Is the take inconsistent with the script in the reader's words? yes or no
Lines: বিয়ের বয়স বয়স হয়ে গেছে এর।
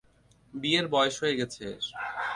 yes